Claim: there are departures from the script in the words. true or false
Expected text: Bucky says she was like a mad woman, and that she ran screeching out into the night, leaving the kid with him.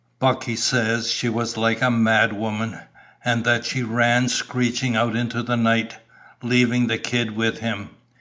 false